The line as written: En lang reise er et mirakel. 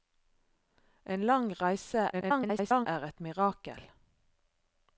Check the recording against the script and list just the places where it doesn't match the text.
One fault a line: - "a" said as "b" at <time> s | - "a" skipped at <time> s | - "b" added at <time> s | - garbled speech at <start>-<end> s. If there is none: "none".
- garbled speech at 2.1-2.9 s